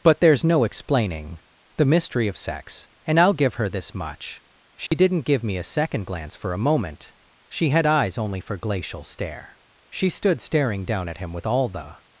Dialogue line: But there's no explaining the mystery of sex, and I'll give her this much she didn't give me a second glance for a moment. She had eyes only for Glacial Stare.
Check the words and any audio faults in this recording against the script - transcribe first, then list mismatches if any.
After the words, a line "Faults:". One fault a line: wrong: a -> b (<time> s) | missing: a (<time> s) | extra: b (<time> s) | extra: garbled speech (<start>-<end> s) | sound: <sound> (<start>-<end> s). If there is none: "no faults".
But there's no explaining the mystery of sex, and I'll give her this much she didn't give me a second glance for a moment. She had eyes only for Glacial Stare. She stood staring down at him with all the
Faults:
sound: dropout (4.9-4.9 s)
extra: She stood staring down at him with all the (9.9 s)